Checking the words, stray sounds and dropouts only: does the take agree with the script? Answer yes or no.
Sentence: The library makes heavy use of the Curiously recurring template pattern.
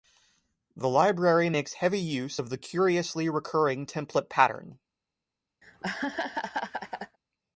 no